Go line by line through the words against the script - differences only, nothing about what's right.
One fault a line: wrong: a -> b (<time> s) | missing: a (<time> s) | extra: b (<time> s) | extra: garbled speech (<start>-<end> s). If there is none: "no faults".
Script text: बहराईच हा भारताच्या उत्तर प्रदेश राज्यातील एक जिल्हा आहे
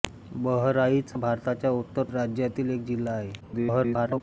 missing: हा (1.1 s)
missing: प्रदेश (2.0 s)
extra: garbled speech (3.4-4.2 s)